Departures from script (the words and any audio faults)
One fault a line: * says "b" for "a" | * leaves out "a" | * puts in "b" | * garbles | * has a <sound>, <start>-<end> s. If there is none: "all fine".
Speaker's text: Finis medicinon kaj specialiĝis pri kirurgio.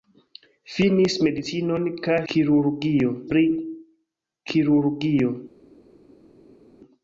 * says "kirurgio" for "specialiĝis"